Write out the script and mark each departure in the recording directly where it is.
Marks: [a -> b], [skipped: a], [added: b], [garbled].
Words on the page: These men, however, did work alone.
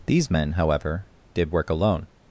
These men, however, did work alone.